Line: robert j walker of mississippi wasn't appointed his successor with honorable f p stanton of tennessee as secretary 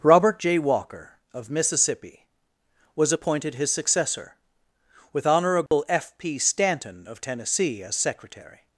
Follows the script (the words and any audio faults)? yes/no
no